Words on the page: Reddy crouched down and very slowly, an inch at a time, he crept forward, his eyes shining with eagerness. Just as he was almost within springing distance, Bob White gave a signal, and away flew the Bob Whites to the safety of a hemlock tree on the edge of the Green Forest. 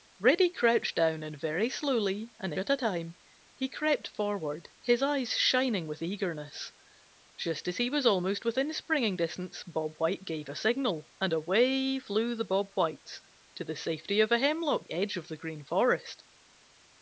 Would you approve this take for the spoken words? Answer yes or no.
no